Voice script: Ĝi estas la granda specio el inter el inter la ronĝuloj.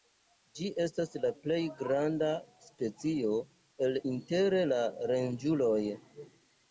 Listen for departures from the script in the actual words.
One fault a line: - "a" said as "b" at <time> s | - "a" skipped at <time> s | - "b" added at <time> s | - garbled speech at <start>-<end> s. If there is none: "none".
- "plej" added at 1.4 s
- "el inter" skipped at 4.6 s